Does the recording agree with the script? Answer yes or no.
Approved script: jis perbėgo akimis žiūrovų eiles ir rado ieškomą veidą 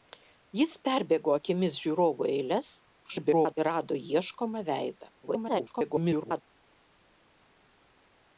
no